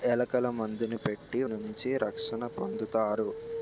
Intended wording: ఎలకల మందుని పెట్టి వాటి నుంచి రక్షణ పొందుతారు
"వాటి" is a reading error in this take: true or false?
true